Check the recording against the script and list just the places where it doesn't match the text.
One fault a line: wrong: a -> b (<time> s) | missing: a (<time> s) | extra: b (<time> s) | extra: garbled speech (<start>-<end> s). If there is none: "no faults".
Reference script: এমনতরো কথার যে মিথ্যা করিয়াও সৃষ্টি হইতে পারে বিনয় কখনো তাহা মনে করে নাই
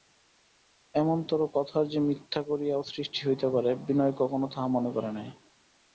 no faults